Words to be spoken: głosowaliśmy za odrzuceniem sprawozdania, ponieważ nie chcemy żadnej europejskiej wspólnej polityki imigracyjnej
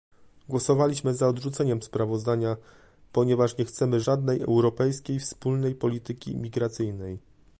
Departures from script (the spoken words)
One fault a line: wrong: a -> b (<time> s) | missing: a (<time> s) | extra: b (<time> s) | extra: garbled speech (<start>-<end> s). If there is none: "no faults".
no faults